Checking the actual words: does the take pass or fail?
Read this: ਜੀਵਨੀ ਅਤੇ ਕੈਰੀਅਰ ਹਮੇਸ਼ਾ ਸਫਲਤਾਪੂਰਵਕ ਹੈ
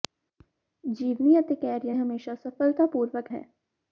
pass